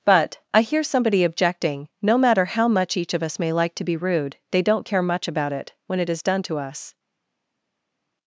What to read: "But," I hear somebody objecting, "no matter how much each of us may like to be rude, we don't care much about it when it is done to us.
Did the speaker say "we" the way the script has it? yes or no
no